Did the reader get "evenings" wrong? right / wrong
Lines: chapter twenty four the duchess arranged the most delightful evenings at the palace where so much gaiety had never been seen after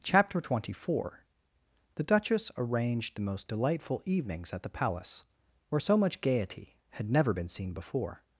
right